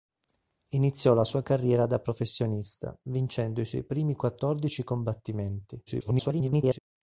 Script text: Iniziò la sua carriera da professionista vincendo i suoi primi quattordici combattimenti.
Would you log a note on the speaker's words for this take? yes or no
yes